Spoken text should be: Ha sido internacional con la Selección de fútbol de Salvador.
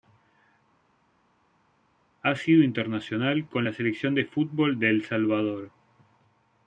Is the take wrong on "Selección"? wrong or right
right